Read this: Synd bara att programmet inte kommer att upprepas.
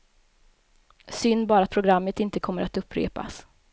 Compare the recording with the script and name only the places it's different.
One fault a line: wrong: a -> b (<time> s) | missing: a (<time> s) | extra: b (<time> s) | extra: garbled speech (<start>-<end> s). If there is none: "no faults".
no faults